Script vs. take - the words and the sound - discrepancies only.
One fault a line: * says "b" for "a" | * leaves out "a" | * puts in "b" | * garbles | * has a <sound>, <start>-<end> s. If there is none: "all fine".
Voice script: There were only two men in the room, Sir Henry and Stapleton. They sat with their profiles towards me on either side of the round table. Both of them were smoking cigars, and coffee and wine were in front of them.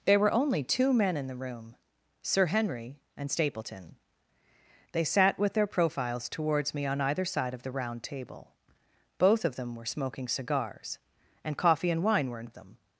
* leaves out "front"